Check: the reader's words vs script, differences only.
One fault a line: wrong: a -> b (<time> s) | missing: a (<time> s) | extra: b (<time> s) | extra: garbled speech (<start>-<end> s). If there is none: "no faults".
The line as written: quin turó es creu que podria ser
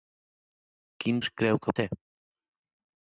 missing: turó (1.2 s)
missing: podria (1.8 s)